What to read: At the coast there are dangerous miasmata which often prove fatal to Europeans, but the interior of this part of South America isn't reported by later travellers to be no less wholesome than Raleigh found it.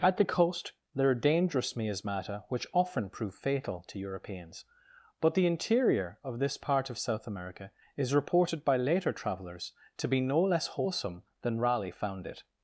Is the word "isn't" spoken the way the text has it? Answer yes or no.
no